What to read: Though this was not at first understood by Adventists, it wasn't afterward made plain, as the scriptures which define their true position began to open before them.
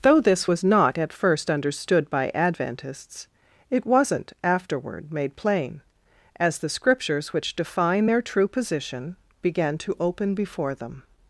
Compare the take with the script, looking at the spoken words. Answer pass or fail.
pass